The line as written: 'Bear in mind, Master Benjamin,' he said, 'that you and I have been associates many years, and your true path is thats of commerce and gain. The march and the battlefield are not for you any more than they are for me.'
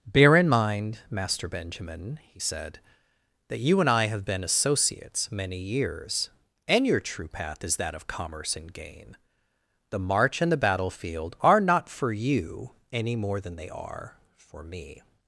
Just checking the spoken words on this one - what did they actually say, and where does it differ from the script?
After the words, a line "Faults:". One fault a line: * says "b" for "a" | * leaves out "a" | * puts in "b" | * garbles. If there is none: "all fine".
'Bear in mind, Master Benjamin,' he said, 'that you and I have been associates many years, and your true path is that of commerce and gain. The march and the battlefield are not for you any more than they are for me.'
Faults:
* says "that" for "thats"